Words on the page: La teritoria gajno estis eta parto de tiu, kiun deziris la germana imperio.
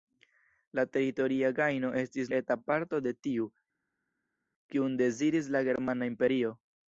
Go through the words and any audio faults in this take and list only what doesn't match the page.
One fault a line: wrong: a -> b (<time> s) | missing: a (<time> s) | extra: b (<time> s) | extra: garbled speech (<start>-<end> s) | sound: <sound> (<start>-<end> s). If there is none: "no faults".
no faults